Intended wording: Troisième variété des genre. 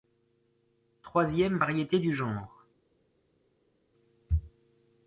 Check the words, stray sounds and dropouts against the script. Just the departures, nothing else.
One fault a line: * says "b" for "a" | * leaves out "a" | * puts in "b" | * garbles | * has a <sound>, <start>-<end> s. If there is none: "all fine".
* says "du" for "des"